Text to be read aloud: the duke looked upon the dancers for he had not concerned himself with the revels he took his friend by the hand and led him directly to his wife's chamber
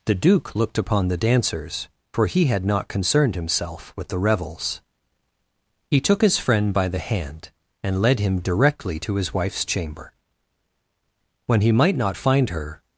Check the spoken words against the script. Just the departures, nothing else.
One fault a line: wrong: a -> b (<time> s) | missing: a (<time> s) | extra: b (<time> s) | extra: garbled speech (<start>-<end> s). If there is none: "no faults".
extra: when he might not find her (11.4 s)